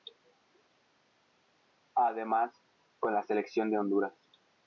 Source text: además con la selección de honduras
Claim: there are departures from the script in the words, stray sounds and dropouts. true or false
false